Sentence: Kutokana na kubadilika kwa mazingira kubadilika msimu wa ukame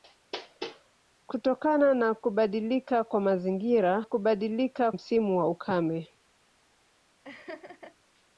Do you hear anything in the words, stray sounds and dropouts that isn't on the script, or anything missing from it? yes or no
yes